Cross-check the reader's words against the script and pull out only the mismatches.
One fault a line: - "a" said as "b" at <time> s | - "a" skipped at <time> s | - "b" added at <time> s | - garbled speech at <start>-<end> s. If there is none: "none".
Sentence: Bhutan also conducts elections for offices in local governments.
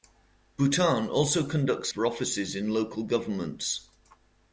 - "elections" skipped at 1.9 s